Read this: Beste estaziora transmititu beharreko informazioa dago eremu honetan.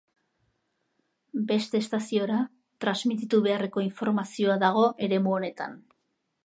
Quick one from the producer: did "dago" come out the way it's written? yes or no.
yes